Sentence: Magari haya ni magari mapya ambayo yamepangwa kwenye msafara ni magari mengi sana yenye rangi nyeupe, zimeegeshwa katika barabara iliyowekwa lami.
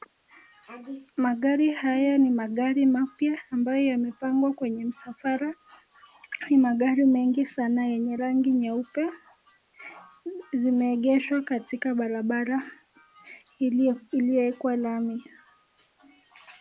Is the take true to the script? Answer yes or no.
yes